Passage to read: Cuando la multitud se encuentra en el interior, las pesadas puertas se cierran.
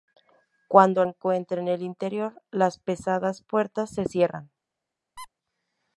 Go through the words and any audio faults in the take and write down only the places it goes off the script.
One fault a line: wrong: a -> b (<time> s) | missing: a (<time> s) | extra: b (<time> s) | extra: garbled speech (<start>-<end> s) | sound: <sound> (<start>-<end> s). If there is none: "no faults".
missing: la multitud se (1.1 s)
sound: squeak (5.2-5.3 s)